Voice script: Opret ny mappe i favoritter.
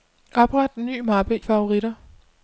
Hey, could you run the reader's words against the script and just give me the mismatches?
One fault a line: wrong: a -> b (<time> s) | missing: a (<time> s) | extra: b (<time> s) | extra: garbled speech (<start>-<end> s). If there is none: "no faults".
missing: i (1.4 s)